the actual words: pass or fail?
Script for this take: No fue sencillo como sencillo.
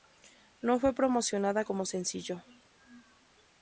fail